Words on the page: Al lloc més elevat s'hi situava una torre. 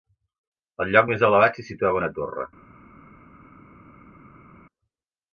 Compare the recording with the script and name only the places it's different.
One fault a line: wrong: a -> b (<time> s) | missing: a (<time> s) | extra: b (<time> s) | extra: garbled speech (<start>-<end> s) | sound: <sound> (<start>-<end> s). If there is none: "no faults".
no faults